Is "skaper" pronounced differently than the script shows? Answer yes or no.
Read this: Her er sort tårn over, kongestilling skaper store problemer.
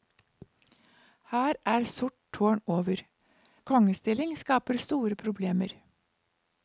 no